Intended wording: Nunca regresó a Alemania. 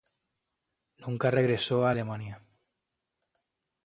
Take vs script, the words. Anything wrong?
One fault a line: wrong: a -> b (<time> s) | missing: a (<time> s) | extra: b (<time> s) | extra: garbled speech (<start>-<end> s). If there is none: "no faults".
no faults